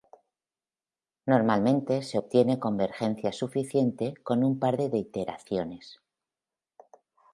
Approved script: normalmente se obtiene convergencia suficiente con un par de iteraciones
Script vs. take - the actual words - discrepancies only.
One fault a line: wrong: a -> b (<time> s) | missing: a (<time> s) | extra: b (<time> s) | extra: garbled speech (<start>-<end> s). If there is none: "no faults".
no faults